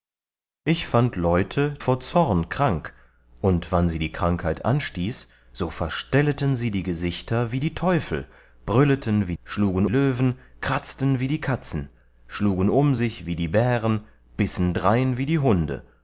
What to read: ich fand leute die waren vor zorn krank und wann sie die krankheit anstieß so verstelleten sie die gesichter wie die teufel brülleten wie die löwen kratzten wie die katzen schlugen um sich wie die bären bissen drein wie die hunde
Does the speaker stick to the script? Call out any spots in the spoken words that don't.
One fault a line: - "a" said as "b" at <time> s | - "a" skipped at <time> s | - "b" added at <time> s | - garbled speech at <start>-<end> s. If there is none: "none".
- "die waren" skipped at 1.8 s
- "die" said as "schlugen" at 9.4 s